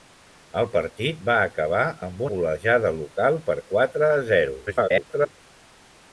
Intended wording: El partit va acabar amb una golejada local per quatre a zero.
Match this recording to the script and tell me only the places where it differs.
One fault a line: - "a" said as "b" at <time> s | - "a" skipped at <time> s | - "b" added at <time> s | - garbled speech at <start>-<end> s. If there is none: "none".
- "una" skipped at 2.2 s
- garbled speech at 4.7-5.4 s